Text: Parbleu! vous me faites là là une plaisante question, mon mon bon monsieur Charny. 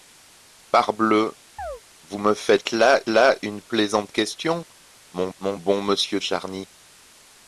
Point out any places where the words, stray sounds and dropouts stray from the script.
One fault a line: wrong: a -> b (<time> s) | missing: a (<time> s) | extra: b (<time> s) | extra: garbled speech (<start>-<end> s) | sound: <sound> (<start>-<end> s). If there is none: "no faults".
sound: chirp (1.6-1.8 s)